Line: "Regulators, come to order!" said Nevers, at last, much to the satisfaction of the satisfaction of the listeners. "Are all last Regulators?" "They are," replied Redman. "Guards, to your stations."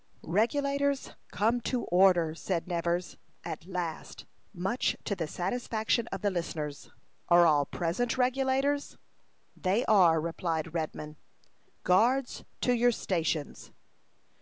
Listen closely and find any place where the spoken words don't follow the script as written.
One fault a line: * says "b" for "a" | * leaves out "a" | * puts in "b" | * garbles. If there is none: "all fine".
* leaves out "satisfaction of the"
* says "present" for "last"